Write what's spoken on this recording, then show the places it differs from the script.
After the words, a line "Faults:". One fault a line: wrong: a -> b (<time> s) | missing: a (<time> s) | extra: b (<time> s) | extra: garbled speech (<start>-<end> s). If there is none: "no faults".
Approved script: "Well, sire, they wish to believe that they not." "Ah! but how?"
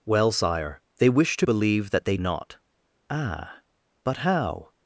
"Well, sire, they wish to believe that they not." "Ah! but how?"
Faults:
no faults